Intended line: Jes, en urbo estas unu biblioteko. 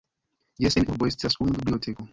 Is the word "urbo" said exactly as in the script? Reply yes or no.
yes